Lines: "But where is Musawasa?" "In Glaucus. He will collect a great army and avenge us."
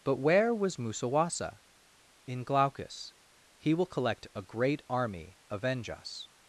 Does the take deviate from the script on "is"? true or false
true